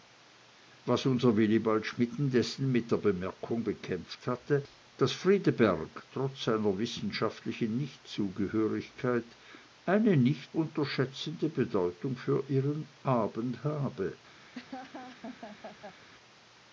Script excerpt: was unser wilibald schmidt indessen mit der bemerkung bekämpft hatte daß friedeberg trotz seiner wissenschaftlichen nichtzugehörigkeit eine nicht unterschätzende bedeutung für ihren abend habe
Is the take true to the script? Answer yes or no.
yes